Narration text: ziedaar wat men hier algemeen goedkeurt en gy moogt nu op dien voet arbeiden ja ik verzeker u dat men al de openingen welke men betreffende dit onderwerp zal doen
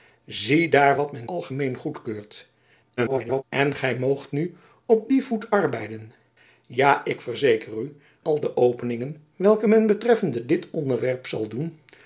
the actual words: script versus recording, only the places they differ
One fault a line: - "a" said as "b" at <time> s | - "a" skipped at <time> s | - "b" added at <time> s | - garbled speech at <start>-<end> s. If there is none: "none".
- "hier" skipped at 1.3 s
- garbled speech at 3.0-3.4 s
- "dat men" skipped at 7.9 s